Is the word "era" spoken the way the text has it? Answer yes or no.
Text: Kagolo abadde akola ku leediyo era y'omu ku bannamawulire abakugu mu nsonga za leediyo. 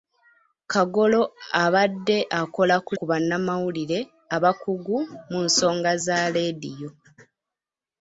no